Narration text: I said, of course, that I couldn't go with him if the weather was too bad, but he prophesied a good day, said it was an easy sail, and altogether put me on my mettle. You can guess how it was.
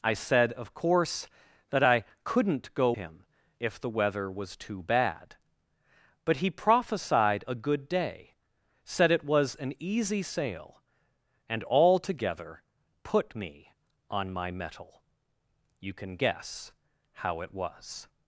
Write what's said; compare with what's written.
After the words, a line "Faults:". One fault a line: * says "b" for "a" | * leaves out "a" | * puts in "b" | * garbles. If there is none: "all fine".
I said, of course, that I couldn't go him if the weather was too bad, but he prophesied a good day, said it was an easy sail, and altogether put me on my mettle. You can guess how it was.
Faults:
* leaves out "with"